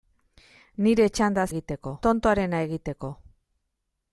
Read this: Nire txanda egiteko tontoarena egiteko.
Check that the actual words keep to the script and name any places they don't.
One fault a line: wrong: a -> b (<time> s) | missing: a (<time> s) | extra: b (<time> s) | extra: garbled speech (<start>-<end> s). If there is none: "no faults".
no faults